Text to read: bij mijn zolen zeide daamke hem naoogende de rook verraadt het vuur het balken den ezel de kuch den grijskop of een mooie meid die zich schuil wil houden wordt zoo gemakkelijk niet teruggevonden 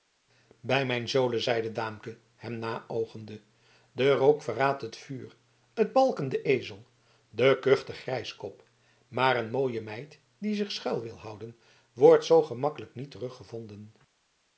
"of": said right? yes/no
no